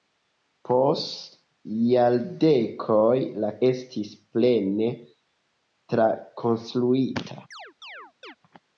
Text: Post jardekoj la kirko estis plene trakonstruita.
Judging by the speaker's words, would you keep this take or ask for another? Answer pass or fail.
fail